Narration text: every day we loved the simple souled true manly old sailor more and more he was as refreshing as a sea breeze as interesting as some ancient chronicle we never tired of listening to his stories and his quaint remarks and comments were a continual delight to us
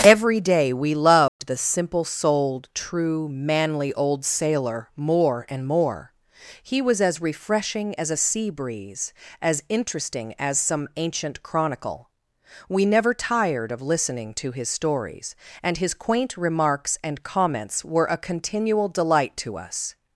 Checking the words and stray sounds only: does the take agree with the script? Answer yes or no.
no